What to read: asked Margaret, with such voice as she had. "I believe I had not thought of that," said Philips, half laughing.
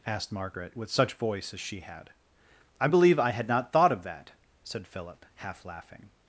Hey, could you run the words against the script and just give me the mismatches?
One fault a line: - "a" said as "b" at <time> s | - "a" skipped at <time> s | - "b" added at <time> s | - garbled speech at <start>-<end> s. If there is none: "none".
- "Philips" said as "Philip" at 4.9 s